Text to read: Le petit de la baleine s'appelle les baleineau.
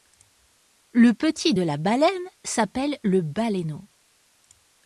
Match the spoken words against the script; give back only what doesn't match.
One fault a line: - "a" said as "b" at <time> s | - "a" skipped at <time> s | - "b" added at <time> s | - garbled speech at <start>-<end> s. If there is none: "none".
- "les" said as "le" at 3.0 s